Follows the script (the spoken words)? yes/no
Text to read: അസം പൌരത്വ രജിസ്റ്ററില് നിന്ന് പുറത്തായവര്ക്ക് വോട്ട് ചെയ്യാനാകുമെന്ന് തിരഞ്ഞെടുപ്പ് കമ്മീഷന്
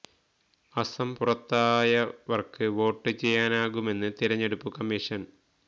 no